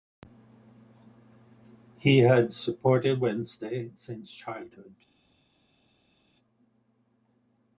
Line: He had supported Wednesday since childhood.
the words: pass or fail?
pass